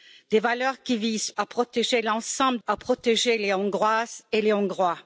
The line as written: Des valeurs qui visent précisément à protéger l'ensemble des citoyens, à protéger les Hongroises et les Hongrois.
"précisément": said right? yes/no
no